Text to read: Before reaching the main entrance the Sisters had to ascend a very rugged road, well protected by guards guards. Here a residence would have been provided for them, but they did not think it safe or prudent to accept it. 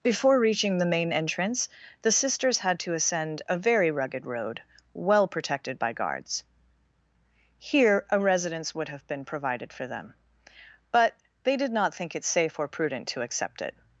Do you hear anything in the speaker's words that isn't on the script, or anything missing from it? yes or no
yes